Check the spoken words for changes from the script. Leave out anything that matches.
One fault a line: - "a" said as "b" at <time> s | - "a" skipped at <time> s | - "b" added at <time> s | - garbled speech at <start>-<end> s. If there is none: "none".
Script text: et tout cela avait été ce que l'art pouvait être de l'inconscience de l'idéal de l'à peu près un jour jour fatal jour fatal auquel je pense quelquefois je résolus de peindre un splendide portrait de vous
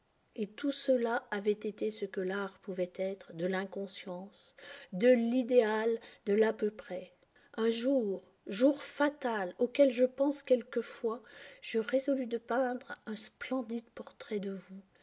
- "jour fatal" skipped at 9.5 s